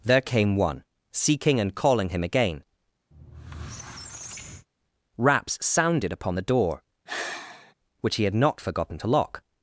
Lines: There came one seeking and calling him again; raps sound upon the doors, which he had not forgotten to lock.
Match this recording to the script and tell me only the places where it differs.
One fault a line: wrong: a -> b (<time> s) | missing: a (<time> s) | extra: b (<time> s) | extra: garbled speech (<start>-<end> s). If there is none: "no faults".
wrong: sound -> sounded (5.6 s)
wrong: doors -> door (6.4 s)